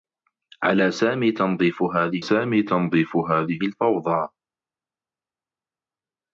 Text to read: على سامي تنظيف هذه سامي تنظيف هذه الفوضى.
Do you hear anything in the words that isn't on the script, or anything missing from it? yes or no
no